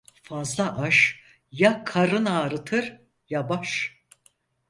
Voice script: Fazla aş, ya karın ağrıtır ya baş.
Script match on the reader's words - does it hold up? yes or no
yes